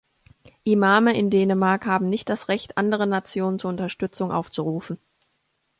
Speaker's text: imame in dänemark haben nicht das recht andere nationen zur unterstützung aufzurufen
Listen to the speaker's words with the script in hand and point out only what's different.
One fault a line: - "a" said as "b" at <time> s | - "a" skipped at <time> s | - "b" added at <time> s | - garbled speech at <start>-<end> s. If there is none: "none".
none